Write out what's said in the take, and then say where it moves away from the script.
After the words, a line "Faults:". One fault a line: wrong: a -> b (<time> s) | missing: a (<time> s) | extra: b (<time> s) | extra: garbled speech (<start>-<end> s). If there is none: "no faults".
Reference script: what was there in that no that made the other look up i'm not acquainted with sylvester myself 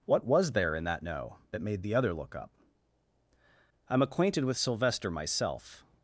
what was there in that no that made the other look up i'm acquainted with sylvester myself
Faults:
missing: not (4.0 s)